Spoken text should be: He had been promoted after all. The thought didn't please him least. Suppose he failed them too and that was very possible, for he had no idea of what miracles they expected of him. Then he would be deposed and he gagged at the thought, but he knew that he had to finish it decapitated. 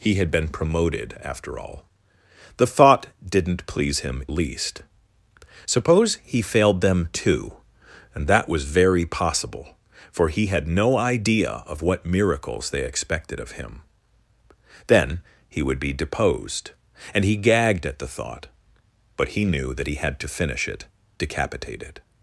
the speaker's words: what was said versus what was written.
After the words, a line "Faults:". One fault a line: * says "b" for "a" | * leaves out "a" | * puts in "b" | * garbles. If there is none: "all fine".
He had been promoted after all. The thought didn't please him least. Suppose he failed them too and that was very possible, for he had no idea of what miracles they expected of him. Then he would be deposed and he gagged at the thought, but he knew that he had to finish it decapitated.
Faults:
all fine